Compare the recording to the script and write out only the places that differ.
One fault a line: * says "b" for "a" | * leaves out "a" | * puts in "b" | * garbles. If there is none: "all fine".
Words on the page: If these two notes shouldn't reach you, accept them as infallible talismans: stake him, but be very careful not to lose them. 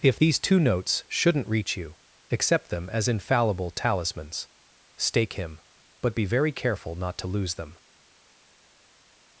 all fine